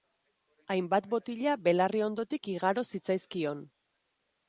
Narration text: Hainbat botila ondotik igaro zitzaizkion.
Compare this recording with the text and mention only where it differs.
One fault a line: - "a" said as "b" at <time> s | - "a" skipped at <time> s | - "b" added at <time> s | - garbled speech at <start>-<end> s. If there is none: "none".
- "belarri" added at 1.7 s